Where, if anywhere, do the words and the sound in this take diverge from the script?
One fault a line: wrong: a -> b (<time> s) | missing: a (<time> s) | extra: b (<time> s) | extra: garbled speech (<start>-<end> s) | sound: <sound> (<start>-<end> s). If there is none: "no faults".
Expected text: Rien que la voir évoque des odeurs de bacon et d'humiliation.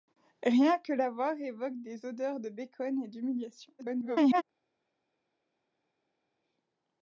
extra: garbled speech (3.8-4.4 s)